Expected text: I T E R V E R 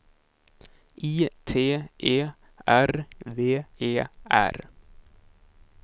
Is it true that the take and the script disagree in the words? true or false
false